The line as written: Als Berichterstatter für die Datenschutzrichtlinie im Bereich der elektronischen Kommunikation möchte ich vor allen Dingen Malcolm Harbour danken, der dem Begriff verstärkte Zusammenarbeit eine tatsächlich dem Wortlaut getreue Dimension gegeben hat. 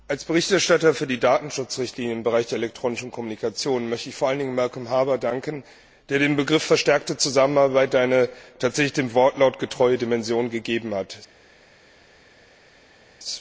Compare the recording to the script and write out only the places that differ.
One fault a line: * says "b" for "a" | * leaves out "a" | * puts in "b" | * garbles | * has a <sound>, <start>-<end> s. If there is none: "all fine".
all fine